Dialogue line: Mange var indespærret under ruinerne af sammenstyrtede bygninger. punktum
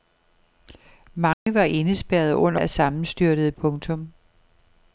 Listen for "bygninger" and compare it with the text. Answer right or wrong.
wrong